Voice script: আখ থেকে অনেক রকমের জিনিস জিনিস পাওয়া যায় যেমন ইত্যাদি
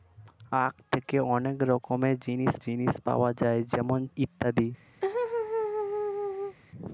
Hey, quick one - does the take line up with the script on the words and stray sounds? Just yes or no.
no